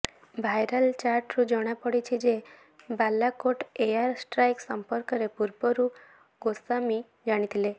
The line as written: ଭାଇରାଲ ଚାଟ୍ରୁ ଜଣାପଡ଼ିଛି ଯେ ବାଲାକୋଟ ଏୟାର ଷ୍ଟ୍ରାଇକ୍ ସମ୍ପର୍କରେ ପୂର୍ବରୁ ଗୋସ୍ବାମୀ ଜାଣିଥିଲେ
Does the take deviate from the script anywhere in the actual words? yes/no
no